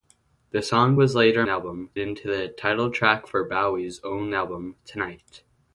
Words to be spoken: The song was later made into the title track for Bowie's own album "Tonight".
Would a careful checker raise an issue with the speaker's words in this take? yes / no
yes